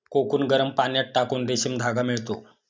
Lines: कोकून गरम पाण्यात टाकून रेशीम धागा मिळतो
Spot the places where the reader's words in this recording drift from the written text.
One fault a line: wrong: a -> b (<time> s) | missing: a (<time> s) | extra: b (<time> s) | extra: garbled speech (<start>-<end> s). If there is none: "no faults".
no faults